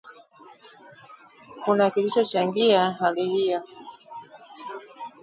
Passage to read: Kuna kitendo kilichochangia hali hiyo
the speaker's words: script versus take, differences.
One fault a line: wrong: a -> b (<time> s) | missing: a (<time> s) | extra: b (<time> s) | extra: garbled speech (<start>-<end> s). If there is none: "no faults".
missing: kitendo (1.9 s)